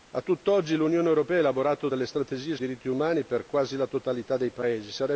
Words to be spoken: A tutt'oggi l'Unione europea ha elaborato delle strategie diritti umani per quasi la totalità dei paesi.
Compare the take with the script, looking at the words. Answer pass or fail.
pass